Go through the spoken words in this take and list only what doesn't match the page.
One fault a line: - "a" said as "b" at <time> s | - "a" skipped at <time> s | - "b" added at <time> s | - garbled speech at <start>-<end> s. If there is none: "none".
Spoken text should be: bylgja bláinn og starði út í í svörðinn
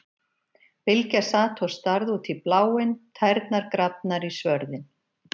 - "bláinn" said as "sat" at 1.3 s
- "bláinn tærnar grafnar" added at 2.5 s